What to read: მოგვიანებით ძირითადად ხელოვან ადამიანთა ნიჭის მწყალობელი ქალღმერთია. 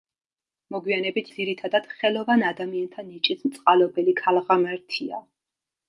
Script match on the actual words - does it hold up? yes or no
yes